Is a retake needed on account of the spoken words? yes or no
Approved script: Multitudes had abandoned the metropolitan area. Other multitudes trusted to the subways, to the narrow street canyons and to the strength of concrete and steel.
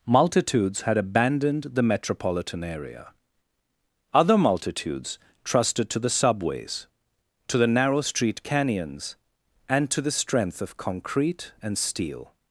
no